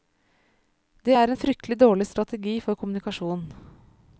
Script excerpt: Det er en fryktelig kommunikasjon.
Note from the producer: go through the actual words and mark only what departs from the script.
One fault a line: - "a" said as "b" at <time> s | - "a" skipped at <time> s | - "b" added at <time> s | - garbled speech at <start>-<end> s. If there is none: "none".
- "dårlig strategi for" added at 1.8 s